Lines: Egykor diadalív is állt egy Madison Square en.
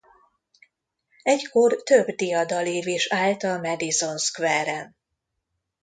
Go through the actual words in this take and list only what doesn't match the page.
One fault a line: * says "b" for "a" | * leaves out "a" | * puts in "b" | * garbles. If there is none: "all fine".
* puts in "több"
* says "a" for "egy"